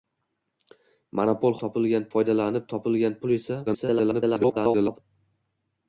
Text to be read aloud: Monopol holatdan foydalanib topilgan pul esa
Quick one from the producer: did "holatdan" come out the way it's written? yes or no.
no